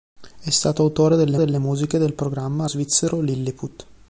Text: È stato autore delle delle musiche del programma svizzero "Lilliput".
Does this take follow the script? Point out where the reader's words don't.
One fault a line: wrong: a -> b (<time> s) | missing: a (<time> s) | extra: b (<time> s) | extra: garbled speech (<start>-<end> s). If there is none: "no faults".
no faults